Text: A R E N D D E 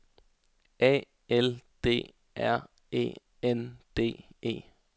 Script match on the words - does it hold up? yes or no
no